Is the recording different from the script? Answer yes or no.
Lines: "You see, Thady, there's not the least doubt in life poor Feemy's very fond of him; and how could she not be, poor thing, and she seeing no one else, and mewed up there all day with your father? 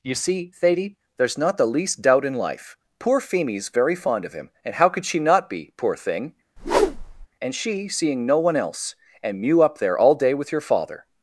yes